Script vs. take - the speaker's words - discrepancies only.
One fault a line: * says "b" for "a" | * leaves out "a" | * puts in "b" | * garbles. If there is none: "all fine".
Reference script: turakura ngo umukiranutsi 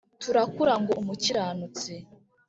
all fine